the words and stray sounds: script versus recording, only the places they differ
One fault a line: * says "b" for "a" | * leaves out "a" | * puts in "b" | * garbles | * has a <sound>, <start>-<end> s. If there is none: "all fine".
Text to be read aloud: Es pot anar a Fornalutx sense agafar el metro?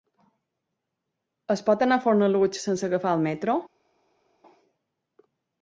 all fine